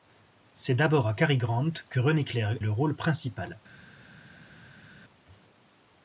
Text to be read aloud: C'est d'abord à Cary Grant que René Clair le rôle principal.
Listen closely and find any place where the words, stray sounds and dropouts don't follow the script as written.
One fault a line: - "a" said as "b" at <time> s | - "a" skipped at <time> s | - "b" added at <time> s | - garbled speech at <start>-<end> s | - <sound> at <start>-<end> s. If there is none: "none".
none